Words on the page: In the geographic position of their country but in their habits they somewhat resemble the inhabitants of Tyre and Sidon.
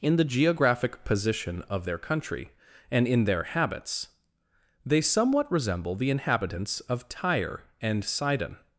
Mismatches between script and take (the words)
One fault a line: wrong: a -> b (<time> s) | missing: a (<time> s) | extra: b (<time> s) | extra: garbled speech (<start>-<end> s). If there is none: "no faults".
wrong: but -> and (2.9 s)